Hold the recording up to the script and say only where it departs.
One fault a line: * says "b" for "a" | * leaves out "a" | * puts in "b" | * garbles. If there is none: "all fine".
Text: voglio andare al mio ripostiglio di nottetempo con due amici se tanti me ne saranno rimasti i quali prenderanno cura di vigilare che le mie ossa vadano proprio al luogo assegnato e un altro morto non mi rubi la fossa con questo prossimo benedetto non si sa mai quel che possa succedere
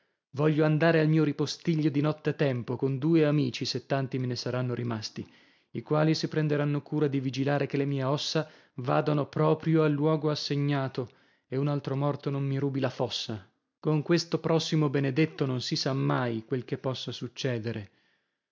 * puts in "si"